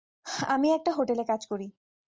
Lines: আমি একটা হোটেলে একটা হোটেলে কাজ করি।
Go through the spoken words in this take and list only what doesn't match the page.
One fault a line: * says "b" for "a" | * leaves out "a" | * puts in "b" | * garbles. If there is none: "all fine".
* leaves out "একটা হোটেলে"